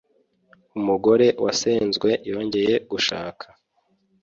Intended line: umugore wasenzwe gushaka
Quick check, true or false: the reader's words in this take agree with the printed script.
false